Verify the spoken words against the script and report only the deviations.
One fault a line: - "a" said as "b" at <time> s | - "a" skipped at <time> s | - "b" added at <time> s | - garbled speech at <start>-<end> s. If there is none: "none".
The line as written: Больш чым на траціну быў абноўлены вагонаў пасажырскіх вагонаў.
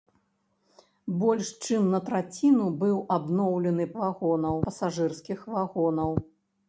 none